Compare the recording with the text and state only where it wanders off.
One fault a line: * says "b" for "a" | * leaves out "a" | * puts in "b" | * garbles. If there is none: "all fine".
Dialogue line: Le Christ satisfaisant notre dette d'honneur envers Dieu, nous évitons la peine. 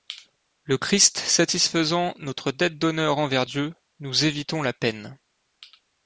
all fine